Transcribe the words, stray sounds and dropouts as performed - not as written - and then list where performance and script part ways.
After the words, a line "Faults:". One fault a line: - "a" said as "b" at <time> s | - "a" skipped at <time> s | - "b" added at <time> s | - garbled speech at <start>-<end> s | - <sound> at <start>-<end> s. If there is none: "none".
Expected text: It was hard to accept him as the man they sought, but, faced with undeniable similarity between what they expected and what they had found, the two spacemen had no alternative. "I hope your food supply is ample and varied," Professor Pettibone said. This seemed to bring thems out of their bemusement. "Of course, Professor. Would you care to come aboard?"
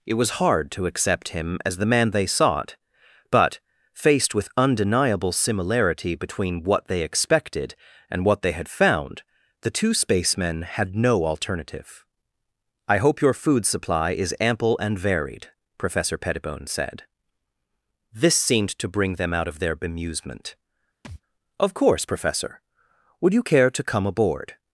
It was hard to accept him as the man they sought, but, faced with undeniable similarity between what they expected and what they had found, the two spacemen had no alternative. "I hope your food supply is ample and varied," Professor Pettibone said. This seemed to bring them out of their bemusement. "Of course, Professor. Would you care to come aboard?"
Faults:
- "thems" said as "them" at 19.1 s
- thud at 21.0-21.2 s